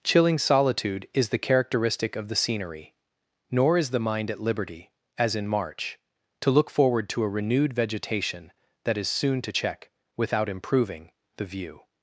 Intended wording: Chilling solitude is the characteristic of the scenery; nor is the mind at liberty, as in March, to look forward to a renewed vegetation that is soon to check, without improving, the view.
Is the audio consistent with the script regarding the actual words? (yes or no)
yes